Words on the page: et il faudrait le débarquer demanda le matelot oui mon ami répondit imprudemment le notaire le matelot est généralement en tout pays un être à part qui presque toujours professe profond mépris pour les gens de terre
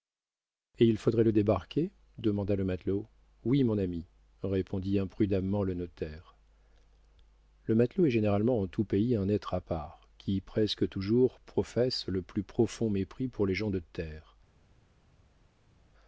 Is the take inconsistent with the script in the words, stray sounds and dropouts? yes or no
yes